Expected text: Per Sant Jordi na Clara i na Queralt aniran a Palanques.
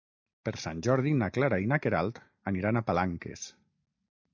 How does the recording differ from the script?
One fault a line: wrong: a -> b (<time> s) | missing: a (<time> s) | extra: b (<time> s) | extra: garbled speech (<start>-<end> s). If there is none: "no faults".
no faults